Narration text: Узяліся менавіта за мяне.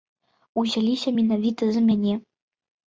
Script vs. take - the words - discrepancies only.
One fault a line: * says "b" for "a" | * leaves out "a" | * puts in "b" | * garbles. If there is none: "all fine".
all fine